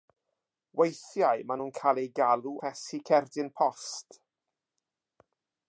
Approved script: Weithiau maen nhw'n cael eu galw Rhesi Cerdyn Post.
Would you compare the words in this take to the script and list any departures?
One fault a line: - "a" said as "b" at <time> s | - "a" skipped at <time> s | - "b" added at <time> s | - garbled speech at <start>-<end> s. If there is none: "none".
none